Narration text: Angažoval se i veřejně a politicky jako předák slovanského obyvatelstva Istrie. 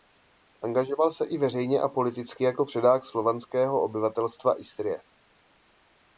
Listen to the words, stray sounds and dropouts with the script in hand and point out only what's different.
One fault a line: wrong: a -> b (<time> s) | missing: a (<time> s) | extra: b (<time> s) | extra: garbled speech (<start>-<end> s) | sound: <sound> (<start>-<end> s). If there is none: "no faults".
no faults